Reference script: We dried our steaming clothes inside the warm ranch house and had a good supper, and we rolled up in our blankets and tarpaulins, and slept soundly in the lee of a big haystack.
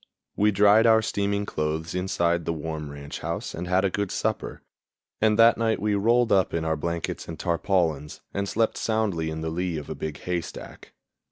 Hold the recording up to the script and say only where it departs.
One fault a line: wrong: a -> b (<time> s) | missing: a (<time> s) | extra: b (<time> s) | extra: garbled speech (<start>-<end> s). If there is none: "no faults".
extra: that night (5.4 s)